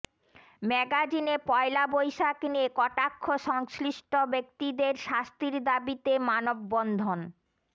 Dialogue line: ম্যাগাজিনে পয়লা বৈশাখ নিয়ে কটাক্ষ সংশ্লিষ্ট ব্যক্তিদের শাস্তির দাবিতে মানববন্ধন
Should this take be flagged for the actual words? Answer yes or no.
no